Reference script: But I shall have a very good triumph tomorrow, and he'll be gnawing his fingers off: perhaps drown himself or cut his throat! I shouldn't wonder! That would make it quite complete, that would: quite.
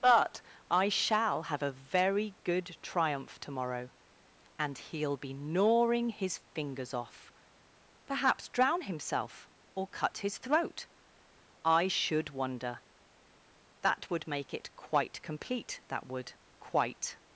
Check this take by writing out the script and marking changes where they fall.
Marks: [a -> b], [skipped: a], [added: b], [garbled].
But I shall have a very good triumph tomorrow, and he'll be gnawing his fingers off: perhaps drown himself or cut his throat! I [shouldn't -> should] wonder! That would make it quite complete, that would: quite.